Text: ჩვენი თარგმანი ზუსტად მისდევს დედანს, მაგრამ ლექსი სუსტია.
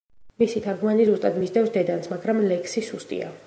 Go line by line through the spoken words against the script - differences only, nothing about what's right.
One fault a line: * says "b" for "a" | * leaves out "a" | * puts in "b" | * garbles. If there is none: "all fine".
* says "მისი" for "ჩვენი"